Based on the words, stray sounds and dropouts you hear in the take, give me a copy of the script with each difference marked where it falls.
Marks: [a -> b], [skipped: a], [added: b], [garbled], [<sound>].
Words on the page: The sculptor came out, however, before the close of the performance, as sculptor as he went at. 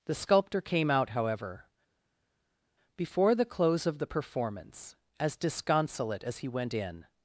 The sculptor came out, however, before the close of the performance, as [sculptor -> disconsolate] as he went [at. -> in]